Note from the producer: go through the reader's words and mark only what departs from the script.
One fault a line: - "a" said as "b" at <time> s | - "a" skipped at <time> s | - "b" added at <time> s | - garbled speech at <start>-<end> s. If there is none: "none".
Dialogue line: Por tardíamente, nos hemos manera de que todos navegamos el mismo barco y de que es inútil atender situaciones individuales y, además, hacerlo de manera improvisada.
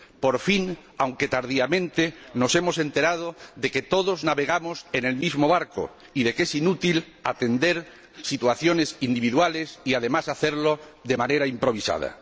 - "fin aunque" added at 0.4 s
- "manera" said as "enterado" at 2.8 s
- "en" added at 4.9 s